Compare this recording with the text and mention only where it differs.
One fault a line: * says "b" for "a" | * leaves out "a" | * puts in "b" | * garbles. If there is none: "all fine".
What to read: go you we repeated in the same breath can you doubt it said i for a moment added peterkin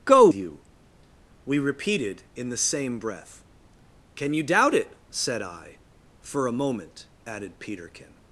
all fine